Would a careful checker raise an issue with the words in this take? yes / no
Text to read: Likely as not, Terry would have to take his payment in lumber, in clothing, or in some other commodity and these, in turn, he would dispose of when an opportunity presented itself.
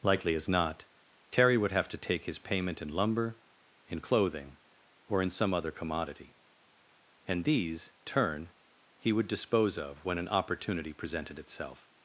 yes